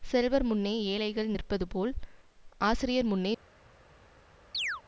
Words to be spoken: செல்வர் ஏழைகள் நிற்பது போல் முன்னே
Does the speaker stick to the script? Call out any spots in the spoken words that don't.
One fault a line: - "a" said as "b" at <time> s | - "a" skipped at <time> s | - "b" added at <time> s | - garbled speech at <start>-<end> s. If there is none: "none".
- "முன்னே" added at 0.5 s
- "ஆசிரியர்" added at 2.6 s